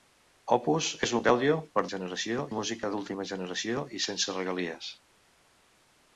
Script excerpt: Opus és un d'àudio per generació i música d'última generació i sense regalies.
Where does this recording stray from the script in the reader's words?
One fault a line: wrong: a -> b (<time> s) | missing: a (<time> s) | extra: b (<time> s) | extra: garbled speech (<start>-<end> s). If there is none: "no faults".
no faults